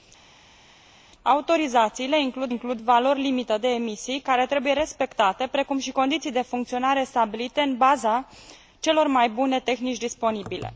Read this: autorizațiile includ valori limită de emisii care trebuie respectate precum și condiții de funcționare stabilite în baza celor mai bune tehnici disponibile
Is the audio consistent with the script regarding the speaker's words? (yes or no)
no